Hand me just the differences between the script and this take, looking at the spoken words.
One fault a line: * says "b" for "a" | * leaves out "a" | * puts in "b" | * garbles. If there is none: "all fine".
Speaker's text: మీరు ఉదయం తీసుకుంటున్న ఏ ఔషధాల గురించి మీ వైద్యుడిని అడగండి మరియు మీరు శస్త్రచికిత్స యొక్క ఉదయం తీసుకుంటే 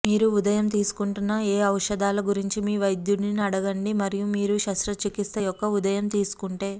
all fine